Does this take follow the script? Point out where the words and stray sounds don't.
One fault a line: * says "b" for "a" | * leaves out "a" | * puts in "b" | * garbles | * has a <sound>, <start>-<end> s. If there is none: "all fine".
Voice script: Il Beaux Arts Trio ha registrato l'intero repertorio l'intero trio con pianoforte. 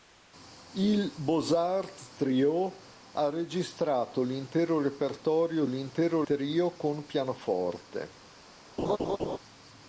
* has a laugh, 8.8-9.4 s